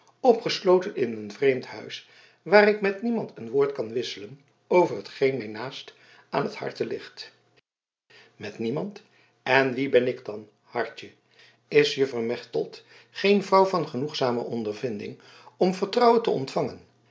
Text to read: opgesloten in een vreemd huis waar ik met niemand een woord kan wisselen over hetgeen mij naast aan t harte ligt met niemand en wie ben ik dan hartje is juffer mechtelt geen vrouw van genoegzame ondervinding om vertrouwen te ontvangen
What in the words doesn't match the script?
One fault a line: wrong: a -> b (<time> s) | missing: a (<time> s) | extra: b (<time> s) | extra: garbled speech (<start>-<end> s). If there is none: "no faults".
no faults